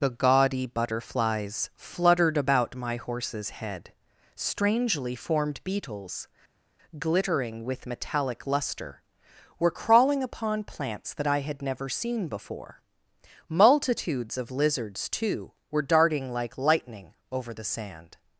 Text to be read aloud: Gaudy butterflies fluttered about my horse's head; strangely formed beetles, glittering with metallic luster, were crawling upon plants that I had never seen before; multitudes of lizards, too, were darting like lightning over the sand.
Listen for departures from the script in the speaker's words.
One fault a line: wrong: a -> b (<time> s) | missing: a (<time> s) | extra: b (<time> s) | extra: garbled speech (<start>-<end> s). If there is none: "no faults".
extra: the (0.0 s)